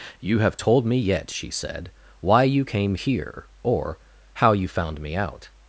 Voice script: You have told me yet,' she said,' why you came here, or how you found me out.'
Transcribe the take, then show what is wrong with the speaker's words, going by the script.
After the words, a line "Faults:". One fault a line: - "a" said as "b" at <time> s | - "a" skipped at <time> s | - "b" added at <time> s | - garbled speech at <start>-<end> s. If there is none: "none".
You have told me yet,' she said,' why you came here, or how you found me out.'
Faults:
none